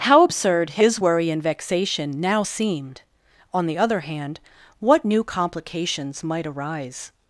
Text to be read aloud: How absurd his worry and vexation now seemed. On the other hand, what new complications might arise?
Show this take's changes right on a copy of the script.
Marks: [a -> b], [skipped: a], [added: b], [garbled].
How absurd his worry and vexation now seemed. On the other hand, what new complications might arise?